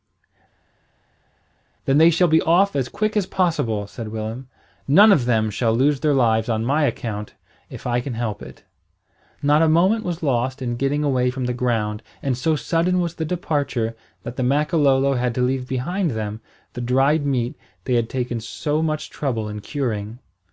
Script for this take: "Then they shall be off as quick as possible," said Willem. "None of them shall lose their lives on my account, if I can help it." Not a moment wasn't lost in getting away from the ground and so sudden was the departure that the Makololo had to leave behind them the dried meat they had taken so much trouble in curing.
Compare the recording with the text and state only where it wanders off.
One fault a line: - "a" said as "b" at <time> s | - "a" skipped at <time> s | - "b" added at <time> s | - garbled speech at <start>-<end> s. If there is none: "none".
- "wasn't" said as "was" at 10.0 s